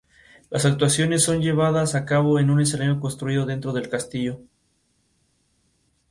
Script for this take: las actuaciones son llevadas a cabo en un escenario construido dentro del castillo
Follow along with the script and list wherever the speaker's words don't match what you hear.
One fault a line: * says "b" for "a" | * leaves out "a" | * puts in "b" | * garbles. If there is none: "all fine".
all fine